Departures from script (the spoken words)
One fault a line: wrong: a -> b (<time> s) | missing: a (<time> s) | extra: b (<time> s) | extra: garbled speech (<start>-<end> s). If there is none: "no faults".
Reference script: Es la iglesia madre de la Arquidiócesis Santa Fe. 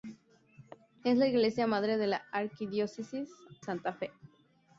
no faults